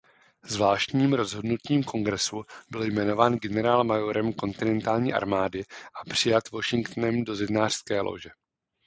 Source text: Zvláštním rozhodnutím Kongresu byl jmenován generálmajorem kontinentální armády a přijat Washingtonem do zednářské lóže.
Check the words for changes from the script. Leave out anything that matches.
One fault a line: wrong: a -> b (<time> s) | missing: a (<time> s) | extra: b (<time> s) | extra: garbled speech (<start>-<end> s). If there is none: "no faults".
no faults